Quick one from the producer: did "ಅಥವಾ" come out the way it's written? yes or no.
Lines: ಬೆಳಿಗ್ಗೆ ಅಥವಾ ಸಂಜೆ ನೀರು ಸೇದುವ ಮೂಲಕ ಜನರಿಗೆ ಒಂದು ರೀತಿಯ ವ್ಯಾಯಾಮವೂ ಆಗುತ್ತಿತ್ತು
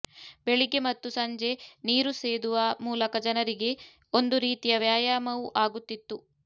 no